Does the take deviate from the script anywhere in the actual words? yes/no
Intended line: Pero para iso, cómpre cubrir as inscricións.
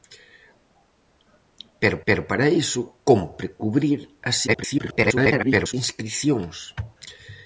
yes